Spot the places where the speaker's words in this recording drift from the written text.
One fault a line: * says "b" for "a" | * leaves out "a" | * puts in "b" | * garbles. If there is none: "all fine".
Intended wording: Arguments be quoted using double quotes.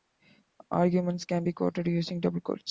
* puts in "can"